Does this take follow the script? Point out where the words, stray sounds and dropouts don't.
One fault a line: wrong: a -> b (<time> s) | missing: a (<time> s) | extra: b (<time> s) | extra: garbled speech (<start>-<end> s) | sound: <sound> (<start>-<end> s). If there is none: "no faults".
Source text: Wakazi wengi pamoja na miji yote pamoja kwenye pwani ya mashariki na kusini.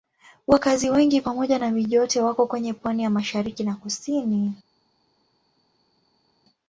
wrong: pamoja -> wako (2.2 s)